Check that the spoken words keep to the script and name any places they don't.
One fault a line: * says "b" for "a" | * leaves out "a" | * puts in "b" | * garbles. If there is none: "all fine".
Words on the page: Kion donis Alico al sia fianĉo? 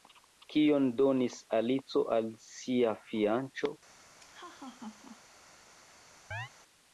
all fine